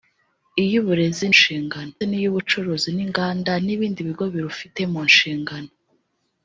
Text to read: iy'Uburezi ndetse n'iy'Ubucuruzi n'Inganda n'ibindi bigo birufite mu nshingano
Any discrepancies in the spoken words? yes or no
yes